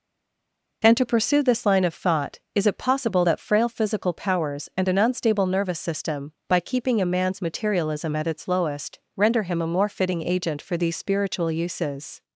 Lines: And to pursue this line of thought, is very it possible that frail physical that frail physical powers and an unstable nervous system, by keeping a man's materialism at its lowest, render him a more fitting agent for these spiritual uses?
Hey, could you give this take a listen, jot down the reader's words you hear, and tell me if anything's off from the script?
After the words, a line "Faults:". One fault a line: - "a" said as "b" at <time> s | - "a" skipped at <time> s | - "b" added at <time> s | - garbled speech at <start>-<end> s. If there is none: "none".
And to pursue this line of thought, is it possible that frail physical powers and an unstable nervous system, by keeping a man's materialism at its lowest, render him a more fitting agent for these spiritual uses?
Faults:
- "very" skipped at 2.7 s
- "that frail physical" skipped at 4.1 s